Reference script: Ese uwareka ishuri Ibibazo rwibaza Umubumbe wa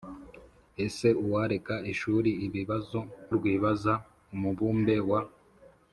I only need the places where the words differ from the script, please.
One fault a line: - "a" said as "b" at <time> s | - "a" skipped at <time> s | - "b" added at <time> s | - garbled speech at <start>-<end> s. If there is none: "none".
none